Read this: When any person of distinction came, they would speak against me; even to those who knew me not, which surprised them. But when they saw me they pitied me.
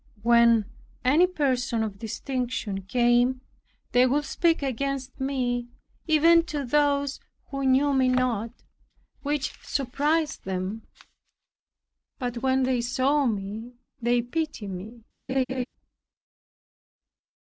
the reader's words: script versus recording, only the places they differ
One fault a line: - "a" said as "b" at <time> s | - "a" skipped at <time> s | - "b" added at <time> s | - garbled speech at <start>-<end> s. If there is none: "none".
none